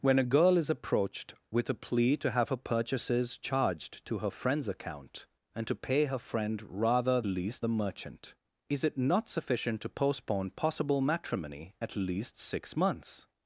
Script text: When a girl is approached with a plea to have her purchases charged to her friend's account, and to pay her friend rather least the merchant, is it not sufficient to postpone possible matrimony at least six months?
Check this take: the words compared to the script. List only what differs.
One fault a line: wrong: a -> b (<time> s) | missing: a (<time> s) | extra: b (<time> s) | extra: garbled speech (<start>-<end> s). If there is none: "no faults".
no faults